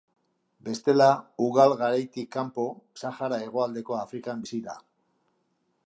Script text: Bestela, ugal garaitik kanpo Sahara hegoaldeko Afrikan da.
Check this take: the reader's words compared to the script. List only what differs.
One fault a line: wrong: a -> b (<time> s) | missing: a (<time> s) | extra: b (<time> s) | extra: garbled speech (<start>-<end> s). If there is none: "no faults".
extra: bizi (4.4 s)